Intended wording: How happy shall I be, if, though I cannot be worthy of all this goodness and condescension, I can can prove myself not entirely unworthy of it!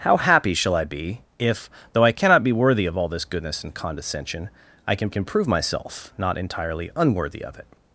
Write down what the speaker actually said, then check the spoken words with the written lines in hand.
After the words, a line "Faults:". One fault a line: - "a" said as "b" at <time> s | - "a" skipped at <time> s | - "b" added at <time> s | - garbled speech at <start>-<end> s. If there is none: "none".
How happy shall I be, if, though I cannot be worthy of all this goodness and condescension, I can can prove myself not entirely unworthy of it!
Faults:
none